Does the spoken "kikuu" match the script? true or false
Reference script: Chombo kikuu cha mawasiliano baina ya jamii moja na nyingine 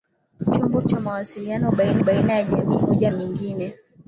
false